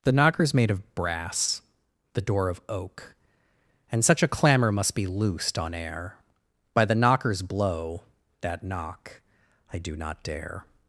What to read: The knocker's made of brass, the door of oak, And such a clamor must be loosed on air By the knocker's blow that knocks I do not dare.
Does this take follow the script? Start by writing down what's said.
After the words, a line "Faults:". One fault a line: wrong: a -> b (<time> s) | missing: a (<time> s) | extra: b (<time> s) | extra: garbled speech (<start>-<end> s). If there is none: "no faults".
The knocker's made of brass, the door of oak, And such a clamor must be loosed on air By the knocker's blow that knock I do not dare.
Faults:
wrong: knocks -> knock (8.6 s)